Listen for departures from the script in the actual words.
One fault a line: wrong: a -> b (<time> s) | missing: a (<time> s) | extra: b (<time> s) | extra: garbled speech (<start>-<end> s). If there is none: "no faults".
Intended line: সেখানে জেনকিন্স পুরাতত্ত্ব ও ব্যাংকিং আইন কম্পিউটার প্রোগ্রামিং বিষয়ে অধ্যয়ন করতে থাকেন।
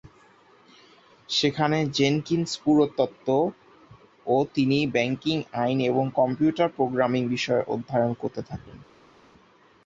extra: তিনি (4.5 s)
extra: এবং (5.8 s)